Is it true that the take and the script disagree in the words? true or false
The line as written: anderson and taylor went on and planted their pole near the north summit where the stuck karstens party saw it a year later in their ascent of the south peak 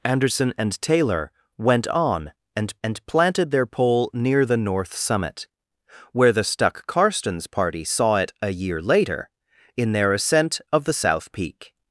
true